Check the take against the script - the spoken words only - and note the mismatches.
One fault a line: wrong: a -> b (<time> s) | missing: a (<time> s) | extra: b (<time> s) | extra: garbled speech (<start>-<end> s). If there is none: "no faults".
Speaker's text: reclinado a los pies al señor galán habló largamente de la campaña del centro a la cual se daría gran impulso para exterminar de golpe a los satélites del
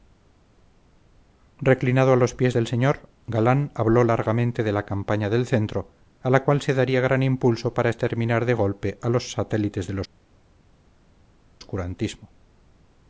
wrong: al -> del (2.5 s)